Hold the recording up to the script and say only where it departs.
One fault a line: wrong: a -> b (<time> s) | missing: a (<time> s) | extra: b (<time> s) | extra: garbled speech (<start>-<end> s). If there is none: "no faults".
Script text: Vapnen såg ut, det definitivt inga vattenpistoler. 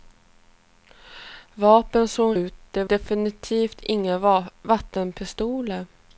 no faults